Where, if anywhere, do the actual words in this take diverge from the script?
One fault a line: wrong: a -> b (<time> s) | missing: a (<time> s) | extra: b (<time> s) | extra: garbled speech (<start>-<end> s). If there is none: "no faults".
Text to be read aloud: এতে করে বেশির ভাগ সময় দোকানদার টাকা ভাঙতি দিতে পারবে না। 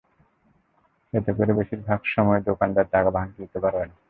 no faults